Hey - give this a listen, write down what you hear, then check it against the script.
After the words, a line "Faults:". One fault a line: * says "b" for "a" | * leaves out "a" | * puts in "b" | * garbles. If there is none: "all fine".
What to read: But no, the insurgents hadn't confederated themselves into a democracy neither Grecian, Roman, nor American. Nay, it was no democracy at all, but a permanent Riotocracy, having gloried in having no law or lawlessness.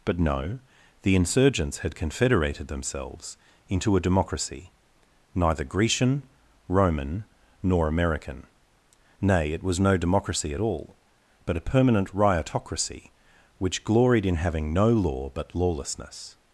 But no, the insurgents had confederated themselves into a democracy neither Grecian, Roman, nor American. Nay, it was no democracy at all, but a permanent Riotocracy, which gloried in having no law but lawlessness.
Faults:
* says "had" for "hadn't"
* says "which" for "having"
* says "but" for "or"